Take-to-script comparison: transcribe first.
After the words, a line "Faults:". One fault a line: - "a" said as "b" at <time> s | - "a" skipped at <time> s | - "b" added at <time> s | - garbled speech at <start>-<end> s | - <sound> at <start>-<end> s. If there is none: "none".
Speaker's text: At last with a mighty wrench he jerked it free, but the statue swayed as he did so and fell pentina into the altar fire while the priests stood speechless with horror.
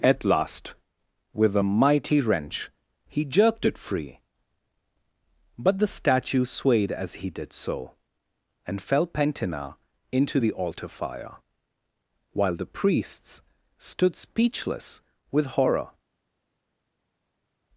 At last with a mighty wrench he jerked it free, but the statue swayed as he did so and fell pentina into the altar fire while the priests stood speechless with horror.
Faults:
none